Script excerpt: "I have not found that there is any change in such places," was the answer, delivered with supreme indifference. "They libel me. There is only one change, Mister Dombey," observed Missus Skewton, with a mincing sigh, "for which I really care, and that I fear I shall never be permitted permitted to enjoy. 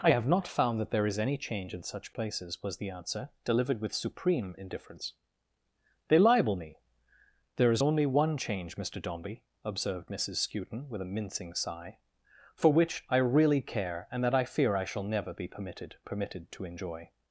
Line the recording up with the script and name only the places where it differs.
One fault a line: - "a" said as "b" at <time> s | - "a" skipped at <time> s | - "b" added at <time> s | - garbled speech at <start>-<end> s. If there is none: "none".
none